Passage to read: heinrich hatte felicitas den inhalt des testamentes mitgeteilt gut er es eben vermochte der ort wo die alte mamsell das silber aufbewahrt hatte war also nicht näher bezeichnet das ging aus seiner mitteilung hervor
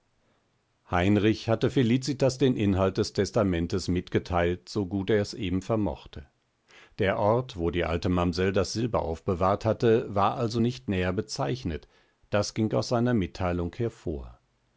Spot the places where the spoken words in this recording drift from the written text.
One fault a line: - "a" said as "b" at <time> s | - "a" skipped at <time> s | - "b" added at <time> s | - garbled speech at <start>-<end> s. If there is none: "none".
- "so" added at 4.7 s